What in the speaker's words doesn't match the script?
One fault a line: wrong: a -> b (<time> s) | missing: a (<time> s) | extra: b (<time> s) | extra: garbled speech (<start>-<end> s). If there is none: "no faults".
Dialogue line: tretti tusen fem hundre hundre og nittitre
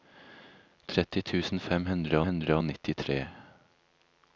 no faults